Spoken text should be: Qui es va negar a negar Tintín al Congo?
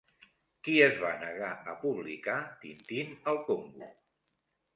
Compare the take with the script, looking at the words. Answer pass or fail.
fail